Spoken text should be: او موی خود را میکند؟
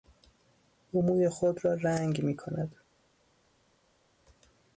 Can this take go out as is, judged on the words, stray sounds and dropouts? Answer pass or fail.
fail